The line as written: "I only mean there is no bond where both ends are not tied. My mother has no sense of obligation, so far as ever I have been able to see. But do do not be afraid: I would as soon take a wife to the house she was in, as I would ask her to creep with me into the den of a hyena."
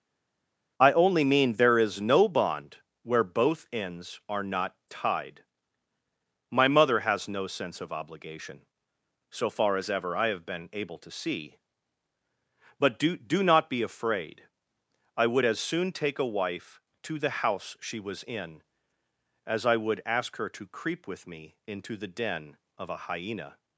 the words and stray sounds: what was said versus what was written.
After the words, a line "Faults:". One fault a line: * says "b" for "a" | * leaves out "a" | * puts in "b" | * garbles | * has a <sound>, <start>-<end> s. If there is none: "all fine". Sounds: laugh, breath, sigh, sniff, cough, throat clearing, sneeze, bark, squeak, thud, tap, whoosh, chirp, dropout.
"I only mean there is no bond where both ends are not tied. My mother has no sense of obligation, so far as ever I have been able to see. But do do not be afraid: I would as soon take a wife to the house she was in, as I would ask her to creep with me into the den of a hyena."
Faults:
all fine